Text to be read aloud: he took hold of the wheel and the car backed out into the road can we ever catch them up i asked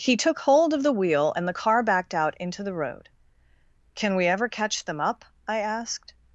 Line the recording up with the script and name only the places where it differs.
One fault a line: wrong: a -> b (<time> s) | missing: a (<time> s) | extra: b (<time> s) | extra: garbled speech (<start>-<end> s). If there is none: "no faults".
no faults